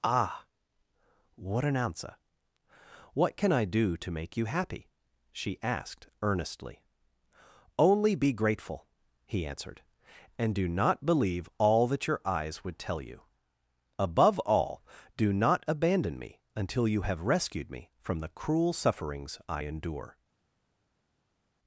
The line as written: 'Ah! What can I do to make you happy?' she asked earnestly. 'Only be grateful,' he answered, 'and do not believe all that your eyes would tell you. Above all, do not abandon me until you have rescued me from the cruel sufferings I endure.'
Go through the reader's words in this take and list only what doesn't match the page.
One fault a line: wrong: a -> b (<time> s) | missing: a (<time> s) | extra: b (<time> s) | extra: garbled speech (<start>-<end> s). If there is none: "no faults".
extra: an answer what (1.6 s)